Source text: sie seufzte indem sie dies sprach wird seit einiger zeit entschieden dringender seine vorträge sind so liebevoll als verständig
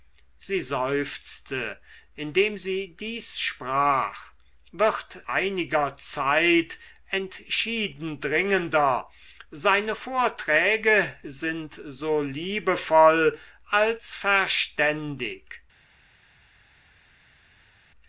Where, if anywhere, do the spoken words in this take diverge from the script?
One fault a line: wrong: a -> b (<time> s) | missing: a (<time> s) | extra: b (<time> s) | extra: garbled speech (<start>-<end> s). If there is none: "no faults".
missing: seit (5.2 s)